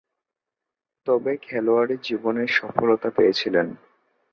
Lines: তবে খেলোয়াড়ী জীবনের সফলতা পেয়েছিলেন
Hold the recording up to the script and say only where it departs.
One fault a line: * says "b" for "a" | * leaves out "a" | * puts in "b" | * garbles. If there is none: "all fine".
all fine